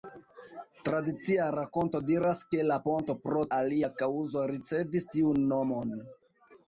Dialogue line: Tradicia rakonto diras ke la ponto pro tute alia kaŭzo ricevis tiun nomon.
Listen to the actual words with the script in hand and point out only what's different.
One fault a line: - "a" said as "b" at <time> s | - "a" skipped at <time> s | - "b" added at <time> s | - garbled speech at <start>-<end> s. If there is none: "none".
- "tute" skipped at 3.4 s